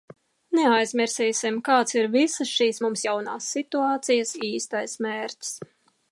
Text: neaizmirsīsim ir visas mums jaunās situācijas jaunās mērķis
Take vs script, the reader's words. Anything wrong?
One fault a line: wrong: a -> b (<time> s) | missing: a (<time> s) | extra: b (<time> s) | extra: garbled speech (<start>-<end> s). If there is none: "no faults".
extra: kāds (1.7 s)
extra: šīs (2.6 s)
wrong: jaunās -> īstais (4.5 s)